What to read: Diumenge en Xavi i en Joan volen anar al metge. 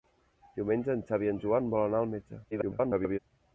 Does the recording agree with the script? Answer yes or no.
no